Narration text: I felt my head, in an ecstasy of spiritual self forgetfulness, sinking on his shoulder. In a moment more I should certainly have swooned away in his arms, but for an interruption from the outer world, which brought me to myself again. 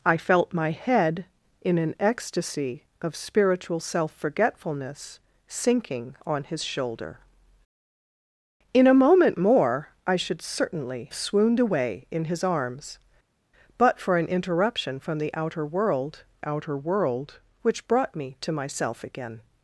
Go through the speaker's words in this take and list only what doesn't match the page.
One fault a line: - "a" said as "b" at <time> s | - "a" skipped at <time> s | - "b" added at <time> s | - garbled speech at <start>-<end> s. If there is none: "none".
- "have" skipped at 11.1 s
- "outer world" added at 16.5 s